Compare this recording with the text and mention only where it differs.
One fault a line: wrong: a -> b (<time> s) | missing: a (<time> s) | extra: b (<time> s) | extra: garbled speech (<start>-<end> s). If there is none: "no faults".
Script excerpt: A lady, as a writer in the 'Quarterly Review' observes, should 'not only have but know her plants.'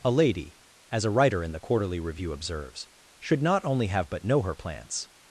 no faults